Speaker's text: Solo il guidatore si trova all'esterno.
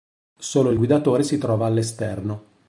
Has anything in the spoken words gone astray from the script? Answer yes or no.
no